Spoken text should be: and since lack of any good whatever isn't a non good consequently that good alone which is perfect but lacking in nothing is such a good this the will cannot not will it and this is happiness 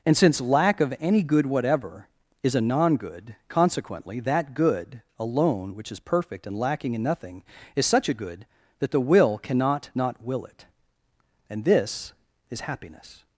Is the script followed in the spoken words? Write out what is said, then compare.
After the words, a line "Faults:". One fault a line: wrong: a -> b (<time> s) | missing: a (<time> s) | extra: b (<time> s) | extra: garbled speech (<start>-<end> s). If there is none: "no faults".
and since lack of any good whatever is a non good consequently that good alone which is perfect and lacking in nothing is such a good that the will cannot not will it and this is happiness
Faults:
wrong: isn't -> is (2.4 s)
wrong: but -> and (6.5 s)
wrong: this -> that (8.8 s)